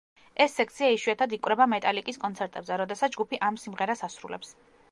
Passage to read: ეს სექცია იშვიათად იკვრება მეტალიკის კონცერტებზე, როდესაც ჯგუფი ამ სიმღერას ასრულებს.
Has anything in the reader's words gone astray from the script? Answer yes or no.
no